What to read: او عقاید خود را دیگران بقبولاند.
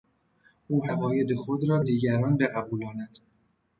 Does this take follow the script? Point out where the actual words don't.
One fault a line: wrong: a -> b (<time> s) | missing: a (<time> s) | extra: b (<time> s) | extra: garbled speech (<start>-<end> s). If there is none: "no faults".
no faults